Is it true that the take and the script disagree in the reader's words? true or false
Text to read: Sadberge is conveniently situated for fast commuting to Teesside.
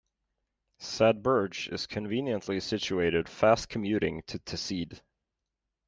true